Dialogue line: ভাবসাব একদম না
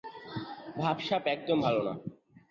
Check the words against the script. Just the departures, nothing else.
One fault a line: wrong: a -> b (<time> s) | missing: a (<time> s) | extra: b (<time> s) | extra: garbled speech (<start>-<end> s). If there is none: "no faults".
extra: ভালো (1.6 s)